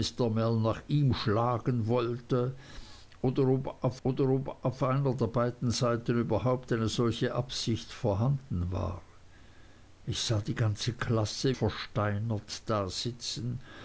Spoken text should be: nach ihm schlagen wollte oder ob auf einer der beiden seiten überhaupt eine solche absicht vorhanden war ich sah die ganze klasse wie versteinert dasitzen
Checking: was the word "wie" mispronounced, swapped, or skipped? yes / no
yes